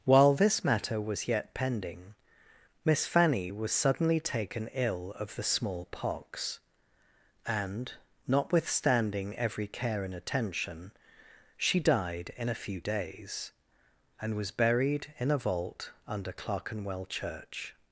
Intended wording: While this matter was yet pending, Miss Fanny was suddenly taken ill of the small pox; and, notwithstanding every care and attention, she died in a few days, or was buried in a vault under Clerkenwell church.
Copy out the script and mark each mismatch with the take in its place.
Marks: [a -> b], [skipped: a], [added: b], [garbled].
While this matter was yet pending, Miss Fanny was suddenly taken ill of the small pox; and, notwithstanding every care and attention, she died in a few days, [or -> and] was buried in a vault under Clerkenwell church.